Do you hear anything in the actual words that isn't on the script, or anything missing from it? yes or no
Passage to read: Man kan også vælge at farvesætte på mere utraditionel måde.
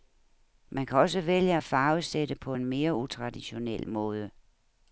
yes